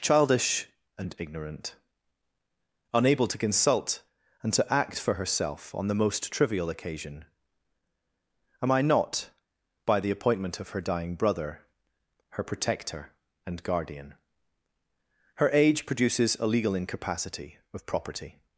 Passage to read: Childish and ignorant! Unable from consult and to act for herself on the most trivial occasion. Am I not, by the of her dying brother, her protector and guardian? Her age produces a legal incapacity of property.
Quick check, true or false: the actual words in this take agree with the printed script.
false